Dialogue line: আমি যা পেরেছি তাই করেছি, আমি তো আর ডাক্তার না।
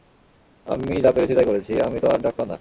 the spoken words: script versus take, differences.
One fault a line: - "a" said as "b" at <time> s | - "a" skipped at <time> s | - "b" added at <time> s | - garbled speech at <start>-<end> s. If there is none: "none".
none